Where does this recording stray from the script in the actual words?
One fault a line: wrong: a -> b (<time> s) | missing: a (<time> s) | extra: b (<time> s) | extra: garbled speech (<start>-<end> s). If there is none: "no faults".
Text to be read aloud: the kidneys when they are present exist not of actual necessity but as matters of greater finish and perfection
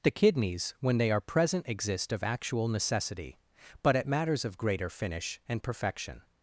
missing: not (2.1 s)
wrong: as -> at (4.0 s)